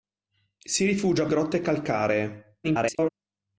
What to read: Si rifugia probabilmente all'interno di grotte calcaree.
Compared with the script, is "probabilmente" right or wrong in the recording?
wrong